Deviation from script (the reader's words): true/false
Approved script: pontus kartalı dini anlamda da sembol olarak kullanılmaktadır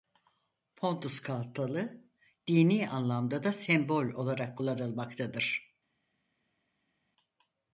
false